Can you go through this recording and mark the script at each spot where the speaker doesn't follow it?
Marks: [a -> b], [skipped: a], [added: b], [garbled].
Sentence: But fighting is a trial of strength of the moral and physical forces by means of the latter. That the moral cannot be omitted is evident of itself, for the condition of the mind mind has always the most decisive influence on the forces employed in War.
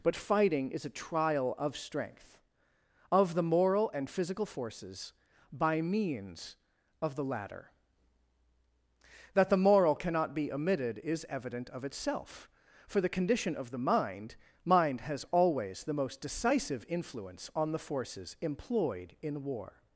But fighting is a trial of strength of the moral and physical forces by means of the latter. That the moral cannot be omitted is evident of itself, for the condition of the mind mind has always the most decisive influence on the forces employed in War.